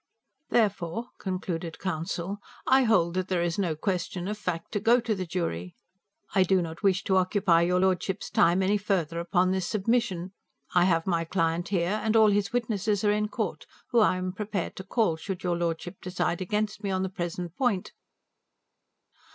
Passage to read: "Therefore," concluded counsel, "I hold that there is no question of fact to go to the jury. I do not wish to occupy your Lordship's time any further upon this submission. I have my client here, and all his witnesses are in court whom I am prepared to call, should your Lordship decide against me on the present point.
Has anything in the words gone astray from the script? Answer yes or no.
no